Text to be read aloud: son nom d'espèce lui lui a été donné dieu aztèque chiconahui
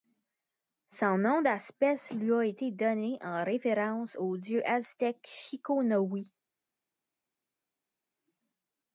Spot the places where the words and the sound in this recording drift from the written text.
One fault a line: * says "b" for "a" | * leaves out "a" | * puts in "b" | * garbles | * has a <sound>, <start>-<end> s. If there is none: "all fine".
* leaves out "lui"
* puts in "en référence au"